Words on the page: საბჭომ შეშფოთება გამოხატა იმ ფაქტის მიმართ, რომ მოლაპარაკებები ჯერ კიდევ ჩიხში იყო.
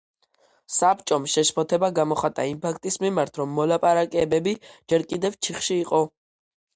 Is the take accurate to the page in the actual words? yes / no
yes